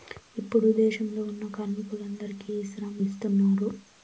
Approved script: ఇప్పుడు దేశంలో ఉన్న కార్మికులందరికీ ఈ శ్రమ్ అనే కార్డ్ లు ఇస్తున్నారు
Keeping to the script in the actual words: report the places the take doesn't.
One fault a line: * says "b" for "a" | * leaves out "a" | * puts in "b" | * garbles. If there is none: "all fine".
* leaves out "అనే కార్డ్ లు"